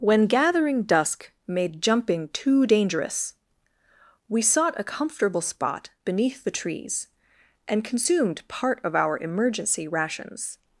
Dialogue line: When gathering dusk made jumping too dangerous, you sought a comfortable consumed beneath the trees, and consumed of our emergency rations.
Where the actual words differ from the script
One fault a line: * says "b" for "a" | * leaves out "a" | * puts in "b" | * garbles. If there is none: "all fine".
* says "we" for "you"
* says "spot" for "consumed"
* puts in "part"